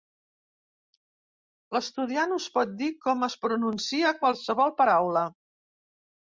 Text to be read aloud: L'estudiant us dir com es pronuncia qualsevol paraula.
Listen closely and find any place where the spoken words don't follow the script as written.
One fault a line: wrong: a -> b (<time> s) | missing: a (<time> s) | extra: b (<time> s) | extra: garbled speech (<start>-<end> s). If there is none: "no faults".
extra: pot (2.6 s)